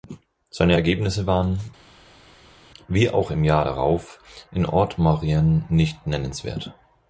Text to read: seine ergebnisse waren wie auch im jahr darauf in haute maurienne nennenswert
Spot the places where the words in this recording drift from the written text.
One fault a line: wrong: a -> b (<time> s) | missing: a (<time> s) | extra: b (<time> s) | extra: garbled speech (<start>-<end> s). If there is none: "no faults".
extra: nicht (5.7 s)